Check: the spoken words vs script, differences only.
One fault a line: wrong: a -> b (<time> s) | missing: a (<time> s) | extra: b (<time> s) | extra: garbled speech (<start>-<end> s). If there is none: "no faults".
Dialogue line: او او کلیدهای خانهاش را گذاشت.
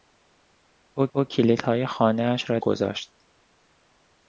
no faults